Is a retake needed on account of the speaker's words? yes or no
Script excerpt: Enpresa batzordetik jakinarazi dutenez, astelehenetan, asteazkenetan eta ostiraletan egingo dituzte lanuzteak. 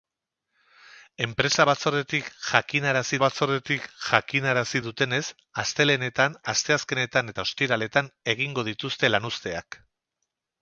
yes